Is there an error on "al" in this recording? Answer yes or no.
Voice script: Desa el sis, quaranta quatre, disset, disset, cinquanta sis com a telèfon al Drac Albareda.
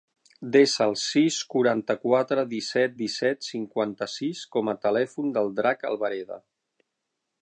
yes